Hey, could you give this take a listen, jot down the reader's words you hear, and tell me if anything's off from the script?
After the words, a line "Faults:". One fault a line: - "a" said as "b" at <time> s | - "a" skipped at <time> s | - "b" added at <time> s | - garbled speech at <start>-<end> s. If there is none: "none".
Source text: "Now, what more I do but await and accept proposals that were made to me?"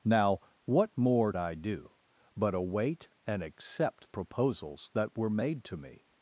"Now, what more I do but await and accept proposals that were made to me?"
Faults:
none